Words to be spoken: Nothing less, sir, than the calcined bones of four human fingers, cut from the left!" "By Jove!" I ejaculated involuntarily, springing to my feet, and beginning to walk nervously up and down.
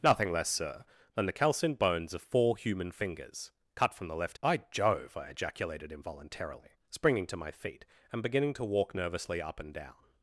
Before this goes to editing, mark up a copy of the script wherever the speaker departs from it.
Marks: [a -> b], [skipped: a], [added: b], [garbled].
Nothing less, sir, than the calcined bones of four human fingers, cut from the left!" "By Jove!" I ejaculated involuntarily, springing to my feet, and beginning to walk nervously up and down.